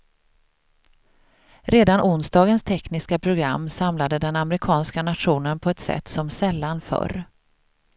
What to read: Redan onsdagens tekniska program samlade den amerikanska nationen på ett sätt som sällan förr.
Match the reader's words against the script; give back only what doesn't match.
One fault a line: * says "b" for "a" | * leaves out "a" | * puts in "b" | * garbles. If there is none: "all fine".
all fine